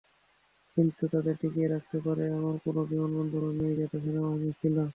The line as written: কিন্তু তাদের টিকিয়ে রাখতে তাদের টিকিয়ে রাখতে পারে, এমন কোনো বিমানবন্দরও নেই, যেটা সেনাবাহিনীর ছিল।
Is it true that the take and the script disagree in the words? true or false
true